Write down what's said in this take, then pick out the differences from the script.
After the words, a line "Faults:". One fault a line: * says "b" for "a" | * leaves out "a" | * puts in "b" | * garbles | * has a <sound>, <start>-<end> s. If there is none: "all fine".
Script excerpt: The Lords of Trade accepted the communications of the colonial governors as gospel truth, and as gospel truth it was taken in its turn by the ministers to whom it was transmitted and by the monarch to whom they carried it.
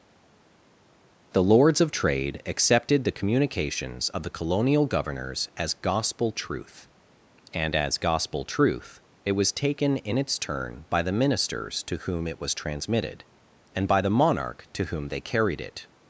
The Lords of Trade accepted the communications of the colonial governors as gospel truth, and as gospel truth it was taken in its turn by the ministers to whom it was transmitted and by the monarch to whom they carried it.
Faults:
all fine